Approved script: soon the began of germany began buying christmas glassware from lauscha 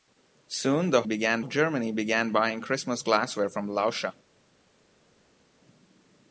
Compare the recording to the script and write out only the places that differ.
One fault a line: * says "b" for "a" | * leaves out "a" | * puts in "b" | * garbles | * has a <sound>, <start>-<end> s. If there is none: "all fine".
all fine